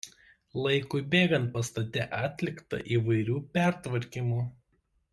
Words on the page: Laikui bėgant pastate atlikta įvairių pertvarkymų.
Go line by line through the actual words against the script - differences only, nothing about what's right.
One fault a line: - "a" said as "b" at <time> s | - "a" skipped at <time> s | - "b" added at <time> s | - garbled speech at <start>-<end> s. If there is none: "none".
none